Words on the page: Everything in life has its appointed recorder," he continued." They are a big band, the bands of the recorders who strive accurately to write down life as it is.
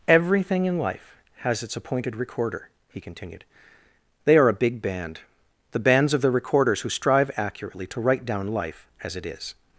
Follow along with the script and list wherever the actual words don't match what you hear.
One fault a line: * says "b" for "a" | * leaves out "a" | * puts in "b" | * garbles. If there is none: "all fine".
all fine